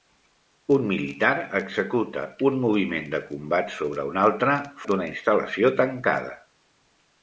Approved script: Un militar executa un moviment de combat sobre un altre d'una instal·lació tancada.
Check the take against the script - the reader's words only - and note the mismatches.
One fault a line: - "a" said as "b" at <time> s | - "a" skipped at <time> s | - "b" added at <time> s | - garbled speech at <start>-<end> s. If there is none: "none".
none